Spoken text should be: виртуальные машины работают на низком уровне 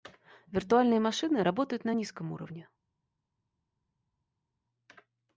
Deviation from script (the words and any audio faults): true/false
false